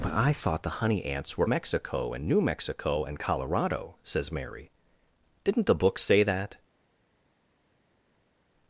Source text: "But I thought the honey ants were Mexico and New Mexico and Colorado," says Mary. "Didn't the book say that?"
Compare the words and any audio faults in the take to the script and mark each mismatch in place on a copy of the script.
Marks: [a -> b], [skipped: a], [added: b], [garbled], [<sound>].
"But I thought the honey ants were Mexico and New Mexico and Colorado," says Mary. "Didn't the book say that?"